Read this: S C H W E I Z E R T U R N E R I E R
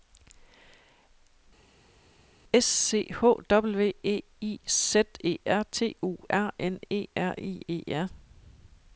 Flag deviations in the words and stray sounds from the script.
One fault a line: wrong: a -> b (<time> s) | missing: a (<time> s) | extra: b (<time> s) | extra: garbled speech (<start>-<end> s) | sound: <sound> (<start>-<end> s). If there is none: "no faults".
no faults